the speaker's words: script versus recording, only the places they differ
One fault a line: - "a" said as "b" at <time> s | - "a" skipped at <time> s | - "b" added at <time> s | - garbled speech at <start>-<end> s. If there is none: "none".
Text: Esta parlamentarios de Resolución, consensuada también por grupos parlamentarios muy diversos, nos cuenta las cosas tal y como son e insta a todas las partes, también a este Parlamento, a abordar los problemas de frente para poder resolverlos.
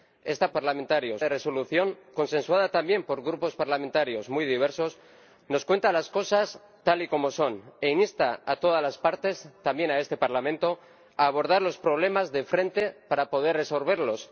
none